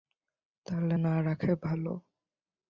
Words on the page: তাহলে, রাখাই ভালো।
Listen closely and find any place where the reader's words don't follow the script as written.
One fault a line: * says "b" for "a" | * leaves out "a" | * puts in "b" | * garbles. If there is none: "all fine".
* puts in "না"